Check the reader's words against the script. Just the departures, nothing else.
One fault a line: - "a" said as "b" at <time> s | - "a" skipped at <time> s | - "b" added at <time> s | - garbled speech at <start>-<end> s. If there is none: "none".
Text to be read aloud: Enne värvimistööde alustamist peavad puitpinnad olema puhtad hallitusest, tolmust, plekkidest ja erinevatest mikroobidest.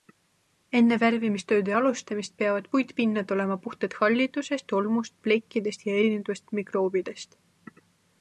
none